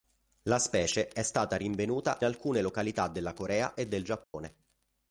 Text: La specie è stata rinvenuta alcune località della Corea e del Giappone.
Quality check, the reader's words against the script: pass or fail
pass